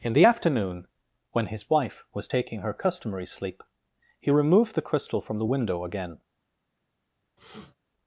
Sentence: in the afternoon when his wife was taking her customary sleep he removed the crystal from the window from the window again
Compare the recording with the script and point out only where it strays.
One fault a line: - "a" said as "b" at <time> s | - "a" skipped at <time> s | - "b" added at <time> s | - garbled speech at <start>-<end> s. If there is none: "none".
- "from the window" skipped at 5.8 s